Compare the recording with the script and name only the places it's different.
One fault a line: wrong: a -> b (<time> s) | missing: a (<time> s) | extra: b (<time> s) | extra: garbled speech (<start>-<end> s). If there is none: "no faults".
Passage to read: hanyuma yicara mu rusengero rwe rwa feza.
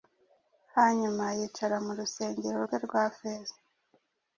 no faults